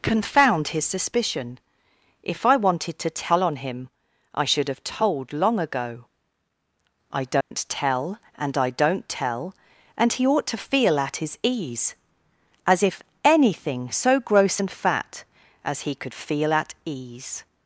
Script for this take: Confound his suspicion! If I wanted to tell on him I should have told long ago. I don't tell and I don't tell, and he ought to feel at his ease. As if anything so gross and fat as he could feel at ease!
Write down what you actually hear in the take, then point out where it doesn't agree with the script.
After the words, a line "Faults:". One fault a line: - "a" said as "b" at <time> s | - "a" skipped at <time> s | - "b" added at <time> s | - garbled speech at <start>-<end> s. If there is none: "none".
Confound his suspicion! If I wanted to tell on him I should have told long ago. I don't tell and I don't tell, and he ought to feel at his ease. As if anything so gross and fat as he could feel at ease!
Faults:
none